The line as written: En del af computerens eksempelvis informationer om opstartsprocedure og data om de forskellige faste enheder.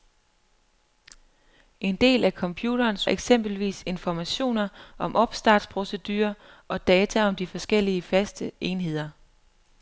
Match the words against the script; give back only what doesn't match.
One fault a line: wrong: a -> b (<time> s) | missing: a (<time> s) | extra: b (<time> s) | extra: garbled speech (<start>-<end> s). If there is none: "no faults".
no faults